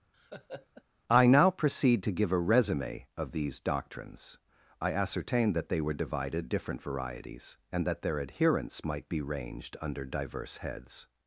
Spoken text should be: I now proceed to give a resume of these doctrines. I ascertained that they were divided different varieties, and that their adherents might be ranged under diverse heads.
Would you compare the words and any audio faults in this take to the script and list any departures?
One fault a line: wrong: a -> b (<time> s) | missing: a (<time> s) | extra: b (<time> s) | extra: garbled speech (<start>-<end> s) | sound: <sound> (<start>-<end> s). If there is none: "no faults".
sound: laugh (0.1-0.8 s)